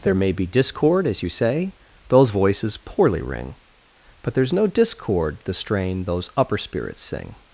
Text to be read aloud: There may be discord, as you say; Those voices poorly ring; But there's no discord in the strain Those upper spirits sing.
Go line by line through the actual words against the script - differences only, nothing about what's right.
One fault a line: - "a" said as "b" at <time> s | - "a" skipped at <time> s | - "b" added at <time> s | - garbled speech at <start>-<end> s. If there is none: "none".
- "in" skipped at 5.4 s